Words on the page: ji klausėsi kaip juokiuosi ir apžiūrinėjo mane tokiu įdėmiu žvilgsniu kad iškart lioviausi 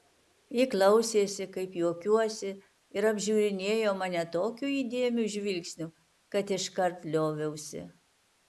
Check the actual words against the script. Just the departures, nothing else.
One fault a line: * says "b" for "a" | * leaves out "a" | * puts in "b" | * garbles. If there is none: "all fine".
all fine